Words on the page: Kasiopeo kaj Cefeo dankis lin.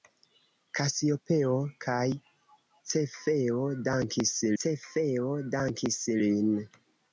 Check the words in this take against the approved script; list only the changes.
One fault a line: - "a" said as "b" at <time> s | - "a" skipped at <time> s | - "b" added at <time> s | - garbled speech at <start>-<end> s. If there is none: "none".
- "Cefeo dankis" added at 4.6 s